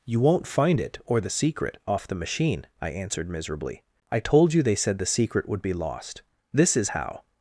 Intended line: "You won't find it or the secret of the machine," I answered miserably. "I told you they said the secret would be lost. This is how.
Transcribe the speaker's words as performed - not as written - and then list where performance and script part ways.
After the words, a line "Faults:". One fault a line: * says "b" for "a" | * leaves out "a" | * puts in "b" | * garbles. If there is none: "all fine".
"You won't find it or the secret off the machine," I answered miserably. "I told you they said the secret would be lost. This is how.
Faults:
* says "off" for "of"